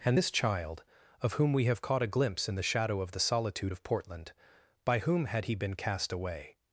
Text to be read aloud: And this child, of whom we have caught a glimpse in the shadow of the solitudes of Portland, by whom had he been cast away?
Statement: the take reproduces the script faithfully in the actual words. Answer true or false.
false